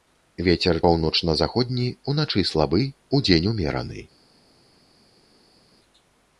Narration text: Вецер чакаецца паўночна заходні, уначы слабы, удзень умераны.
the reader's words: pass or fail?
fail